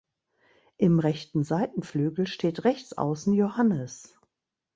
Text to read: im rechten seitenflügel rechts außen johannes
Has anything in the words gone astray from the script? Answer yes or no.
yes